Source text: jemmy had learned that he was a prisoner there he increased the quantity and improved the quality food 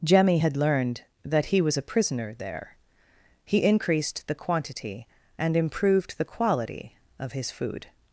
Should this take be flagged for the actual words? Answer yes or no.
yes